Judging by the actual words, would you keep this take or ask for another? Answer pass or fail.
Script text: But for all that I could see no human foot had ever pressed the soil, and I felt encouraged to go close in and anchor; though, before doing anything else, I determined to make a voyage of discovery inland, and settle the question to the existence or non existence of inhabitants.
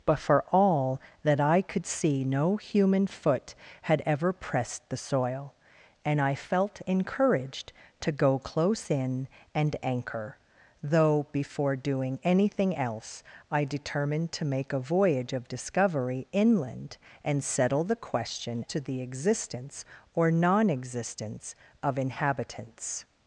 pass